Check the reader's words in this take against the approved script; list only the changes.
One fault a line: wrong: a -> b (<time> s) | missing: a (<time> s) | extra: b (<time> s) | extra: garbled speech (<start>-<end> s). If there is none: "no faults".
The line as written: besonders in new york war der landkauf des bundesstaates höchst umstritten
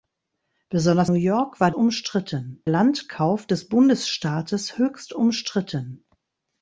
missing: in (1.1 s)
wrong: der -> umstritten (1.7 s)